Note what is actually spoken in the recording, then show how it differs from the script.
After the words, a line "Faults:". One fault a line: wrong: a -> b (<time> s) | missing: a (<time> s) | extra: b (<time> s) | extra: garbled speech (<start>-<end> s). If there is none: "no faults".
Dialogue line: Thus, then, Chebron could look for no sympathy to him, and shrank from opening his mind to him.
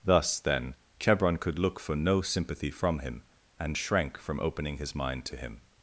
Thus, then, Chebron could look for no sympathy from him, and shrank from opening his mind to him.
Faults:
wrong: to -> from (2.7 s)